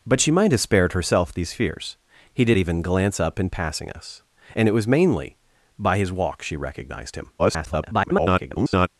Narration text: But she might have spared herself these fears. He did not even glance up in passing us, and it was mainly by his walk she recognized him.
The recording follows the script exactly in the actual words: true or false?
false